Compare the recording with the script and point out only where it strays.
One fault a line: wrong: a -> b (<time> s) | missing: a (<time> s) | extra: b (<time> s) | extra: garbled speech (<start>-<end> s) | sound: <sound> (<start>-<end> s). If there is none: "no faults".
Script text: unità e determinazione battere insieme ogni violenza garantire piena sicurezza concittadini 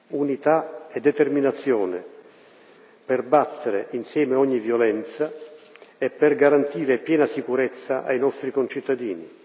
extra: per (3.0 s)
extra: e per (6.0 s)
extra: ai nostri (8.0 s)